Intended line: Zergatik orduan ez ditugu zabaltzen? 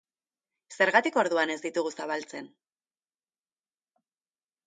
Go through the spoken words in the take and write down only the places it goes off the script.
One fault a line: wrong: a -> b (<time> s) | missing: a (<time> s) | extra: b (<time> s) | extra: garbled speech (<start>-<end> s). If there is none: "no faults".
no faults